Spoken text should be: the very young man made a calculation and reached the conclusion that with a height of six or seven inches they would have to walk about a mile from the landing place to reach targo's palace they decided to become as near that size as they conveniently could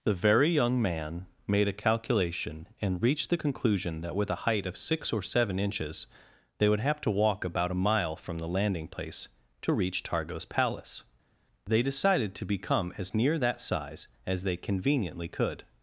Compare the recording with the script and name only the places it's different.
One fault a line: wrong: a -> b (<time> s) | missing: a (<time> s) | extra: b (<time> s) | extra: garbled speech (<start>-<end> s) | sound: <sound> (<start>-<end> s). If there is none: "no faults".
no faults